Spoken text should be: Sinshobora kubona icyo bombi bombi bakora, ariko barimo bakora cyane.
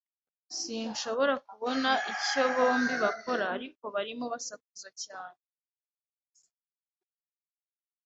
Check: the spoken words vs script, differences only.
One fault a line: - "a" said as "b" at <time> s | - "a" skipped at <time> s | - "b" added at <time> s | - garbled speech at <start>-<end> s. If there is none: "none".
- "bombi" skipped at 2.9 s
- "bakora" said as "basakuza" at 4.3 s